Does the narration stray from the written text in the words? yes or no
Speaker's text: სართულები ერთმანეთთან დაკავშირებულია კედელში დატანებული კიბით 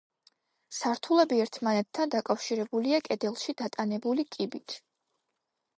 no